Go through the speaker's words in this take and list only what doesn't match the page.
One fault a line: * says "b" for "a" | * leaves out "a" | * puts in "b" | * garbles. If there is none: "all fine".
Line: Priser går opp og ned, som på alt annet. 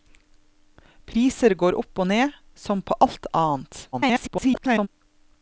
* garbles